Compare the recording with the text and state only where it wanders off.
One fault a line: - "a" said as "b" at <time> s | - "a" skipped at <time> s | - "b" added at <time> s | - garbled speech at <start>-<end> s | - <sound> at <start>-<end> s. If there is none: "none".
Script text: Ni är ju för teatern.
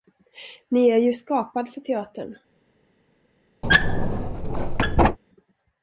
- "skapad" added at 1.1 s
- squeak at 3.6-5.2 s